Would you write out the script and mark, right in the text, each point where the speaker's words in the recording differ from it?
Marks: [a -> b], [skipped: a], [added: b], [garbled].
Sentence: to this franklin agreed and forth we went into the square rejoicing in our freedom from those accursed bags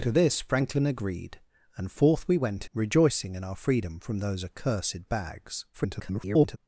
to this franklin agreed and forth we went [skipped: into the square] rejoicing in our freedom from those accursed bags [garbled]